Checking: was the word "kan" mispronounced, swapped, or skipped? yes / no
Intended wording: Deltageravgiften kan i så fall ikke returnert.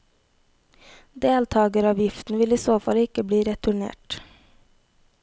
yes